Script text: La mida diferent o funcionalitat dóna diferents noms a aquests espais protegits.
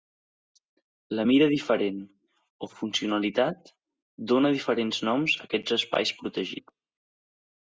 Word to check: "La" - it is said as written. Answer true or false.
true